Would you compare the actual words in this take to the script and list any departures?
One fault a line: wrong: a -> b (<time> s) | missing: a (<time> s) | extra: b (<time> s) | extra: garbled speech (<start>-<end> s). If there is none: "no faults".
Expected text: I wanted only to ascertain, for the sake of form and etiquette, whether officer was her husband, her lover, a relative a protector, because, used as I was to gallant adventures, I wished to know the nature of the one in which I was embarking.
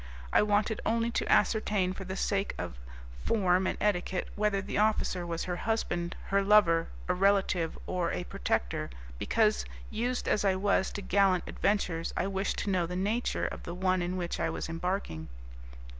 extra: the (4.6 s)
extra: or (7.8 s)